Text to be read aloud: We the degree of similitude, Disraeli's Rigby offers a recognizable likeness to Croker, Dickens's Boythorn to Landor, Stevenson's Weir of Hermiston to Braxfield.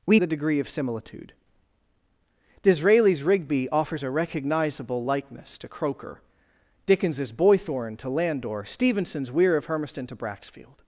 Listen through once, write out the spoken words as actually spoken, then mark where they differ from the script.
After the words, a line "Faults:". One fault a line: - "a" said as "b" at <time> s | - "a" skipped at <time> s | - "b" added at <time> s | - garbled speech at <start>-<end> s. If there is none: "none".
We the degree of similitude, Disraeli's Rigby offers a recognizable likeness to Croker, Dickens's Boythorn to Landor, Stevenson's Weir of Hermiston to Braxfield.
Faults:
none